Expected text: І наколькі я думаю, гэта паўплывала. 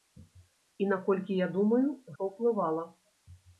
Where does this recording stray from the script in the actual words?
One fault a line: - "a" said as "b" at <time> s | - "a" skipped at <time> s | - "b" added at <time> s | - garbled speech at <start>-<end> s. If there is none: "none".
- "гэта" skipped at 1.8 s